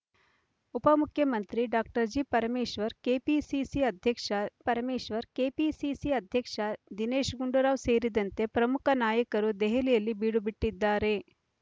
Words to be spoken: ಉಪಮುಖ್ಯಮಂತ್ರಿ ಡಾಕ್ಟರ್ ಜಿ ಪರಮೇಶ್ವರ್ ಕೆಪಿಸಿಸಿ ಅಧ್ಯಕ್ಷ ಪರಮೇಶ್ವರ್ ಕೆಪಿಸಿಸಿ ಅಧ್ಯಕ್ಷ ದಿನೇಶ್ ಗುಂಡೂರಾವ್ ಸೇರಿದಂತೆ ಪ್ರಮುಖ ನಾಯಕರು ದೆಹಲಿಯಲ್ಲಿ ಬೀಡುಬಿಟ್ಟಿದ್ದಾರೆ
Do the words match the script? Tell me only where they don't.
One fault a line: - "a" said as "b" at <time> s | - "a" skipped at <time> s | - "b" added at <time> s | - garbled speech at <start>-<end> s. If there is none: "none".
none